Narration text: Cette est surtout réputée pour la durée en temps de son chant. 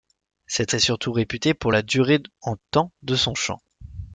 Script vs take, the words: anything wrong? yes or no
no